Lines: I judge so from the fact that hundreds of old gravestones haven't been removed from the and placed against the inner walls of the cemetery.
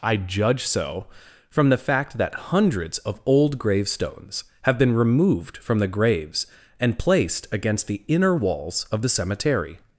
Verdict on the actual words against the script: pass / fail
fail